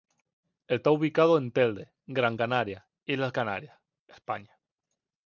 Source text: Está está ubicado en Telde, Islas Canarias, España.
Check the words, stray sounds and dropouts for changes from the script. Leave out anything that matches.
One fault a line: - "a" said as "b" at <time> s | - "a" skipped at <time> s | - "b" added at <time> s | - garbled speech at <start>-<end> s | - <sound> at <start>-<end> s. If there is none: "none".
- "está" skipped at 0.9 s
- "Gran Canaria" added at 2.1 s